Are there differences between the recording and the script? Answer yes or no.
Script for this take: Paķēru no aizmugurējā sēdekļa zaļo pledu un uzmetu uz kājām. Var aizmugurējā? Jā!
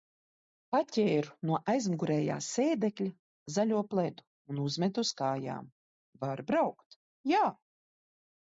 yes